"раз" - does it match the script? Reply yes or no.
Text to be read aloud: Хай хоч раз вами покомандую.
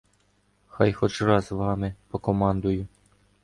yes